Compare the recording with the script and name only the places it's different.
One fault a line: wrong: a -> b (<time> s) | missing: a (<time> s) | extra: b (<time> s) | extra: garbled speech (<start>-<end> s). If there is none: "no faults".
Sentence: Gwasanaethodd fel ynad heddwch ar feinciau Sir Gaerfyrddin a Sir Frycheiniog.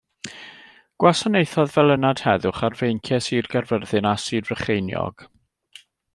no faults